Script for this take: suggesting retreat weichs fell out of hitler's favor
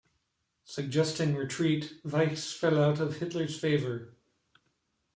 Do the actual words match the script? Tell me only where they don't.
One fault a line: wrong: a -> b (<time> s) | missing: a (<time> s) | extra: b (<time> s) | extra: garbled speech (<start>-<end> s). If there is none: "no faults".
no faults